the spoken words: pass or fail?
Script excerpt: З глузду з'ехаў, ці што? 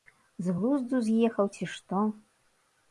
pass